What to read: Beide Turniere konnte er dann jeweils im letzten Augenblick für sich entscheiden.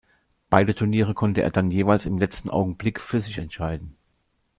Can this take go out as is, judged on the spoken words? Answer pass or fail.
pass